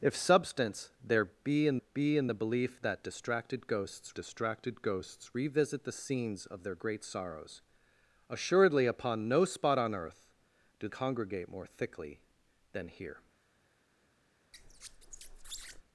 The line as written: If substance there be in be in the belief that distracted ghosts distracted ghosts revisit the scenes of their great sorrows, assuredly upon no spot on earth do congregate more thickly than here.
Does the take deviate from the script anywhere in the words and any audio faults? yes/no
yes